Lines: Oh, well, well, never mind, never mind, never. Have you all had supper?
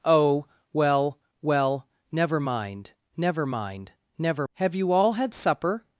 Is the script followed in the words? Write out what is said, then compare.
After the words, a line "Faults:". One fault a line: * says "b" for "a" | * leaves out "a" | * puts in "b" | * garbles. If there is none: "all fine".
Oh, well, well, never mind, never mind, never. Have you all had supper?
Faults:
all fine